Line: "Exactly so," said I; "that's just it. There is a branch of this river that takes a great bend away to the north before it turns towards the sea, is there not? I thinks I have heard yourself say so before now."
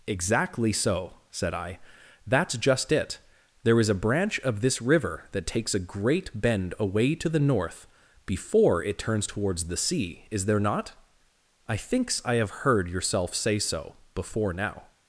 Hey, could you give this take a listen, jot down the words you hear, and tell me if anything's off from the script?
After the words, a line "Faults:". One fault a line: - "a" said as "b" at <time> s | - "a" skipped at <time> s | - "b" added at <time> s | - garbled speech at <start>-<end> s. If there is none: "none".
"Exactly so," said I; "that's just it. There is a branch of this river that takes a great bend away to the north before it turns towards the sea, is there not? I thinks I have heard yourself say so before now."
Faults:
none